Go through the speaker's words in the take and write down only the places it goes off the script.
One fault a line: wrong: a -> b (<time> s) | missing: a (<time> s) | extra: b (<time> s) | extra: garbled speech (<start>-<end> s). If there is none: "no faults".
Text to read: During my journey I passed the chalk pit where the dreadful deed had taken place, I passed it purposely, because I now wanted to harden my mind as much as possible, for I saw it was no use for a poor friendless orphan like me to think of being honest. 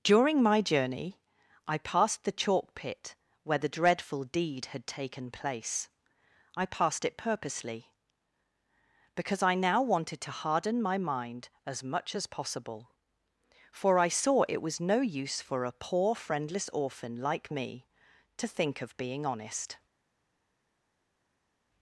no faults